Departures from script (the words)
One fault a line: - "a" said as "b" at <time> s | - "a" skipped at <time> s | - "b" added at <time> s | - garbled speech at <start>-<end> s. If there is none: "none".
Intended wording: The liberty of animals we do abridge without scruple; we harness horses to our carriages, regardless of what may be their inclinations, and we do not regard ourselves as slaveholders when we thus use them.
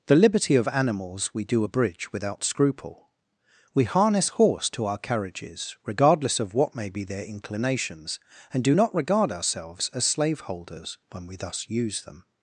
- "horses" said as "horse" at 4.3 s
- "we" skipped at 8.6 s